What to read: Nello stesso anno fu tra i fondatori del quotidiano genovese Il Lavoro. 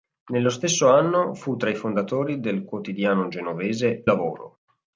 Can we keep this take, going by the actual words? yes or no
no